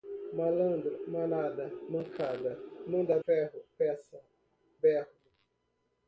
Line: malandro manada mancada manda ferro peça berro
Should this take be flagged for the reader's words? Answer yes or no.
no